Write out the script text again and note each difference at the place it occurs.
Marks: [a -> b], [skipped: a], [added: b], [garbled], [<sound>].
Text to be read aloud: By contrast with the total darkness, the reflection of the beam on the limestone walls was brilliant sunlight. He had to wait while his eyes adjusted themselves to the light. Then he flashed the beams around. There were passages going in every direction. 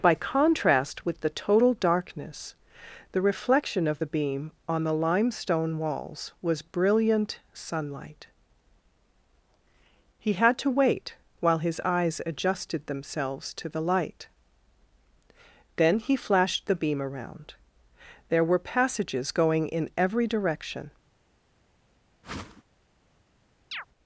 By contrast with the total darkness, the reflection of the beam on the limestone walls was brilliant sunlight. He had to wait while his eyes adjusted themselves to the light. Then he flashed the [beams -> beam] around. There were passages going in every direction. [whoosh] [chirp]